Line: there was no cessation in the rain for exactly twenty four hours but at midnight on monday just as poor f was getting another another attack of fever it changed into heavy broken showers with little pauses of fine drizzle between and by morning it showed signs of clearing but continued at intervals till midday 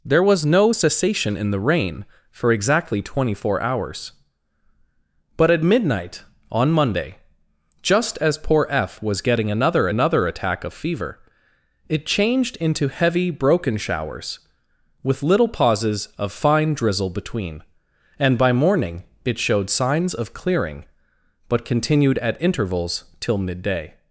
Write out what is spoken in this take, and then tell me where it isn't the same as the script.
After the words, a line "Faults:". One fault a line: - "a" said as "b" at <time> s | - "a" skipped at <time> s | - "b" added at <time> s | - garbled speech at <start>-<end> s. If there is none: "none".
there was no cessation in the rain for exactly twenty four hours but at midnight on monday just as poor f was getting another another attack of fever it changed into heavy broken showers with little pauses of fine drizzle between and by morning it showed signs of clearing but continued at intervals till midday
Faults:
none